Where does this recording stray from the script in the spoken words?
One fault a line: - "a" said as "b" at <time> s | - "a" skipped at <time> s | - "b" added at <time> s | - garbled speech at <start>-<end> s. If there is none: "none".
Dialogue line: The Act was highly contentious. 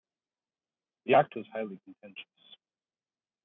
none